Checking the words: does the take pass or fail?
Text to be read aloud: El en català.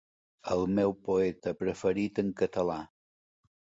fail